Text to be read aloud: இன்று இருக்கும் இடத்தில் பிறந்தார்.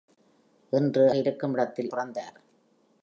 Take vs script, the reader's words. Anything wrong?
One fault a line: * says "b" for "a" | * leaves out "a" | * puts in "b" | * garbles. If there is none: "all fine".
all fine